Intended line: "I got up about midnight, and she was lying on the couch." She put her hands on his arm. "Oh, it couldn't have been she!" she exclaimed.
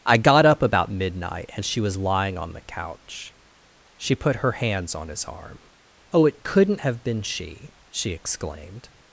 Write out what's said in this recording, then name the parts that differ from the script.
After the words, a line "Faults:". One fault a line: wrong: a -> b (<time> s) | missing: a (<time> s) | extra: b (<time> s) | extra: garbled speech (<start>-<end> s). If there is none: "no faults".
"I got up about midnight, and she was lying on the couch." She put her hands on his arm. "Oh, it couldn't have been she!" she exclaimed.
Faults:
no faults